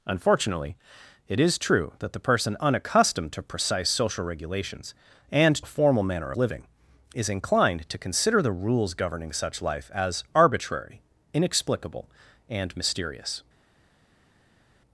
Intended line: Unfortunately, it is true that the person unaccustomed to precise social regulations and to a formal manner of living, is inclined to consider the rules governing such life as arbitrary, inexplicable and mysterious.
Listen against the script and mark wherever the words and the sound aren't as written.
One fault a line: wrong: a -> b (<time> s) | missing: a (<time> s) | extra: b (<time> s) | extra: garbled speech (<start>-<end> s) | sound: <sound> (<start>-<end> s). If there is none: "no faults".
missing: to (5.6 s)
missing: of (6.3 s)